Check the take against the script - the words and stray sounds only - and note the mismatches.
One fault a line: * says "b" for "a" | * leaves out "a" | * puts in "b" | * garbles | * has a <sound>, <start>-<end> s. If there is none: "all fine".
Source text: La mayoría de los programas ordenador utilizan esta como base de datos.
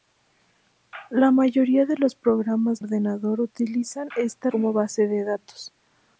all fine